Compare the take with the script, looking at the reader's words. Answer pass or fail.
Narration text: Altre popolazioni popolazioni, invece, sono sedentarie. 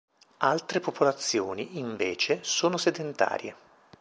fail